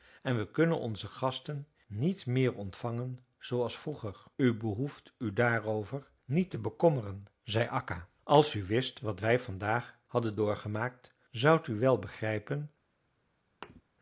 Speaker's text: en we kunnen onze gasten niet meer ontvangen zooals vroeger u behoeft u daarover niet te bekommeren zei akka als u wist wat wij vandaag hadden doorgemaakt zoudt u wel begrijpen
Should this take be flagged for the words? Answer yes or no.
no